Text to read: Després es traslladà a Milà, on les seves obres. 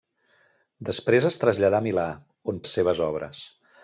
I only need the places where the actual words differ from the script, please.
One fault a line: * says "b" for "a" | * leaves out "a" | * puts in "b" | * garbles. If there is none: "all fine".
all fine